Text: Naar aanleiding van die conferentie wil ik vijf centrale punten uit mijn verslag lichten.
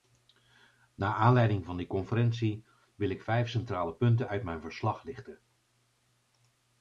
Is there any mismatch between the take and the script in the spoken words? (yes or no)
no